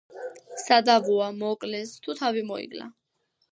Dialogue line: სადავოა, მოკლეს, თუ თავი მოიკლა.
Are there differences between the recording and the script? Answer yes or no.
no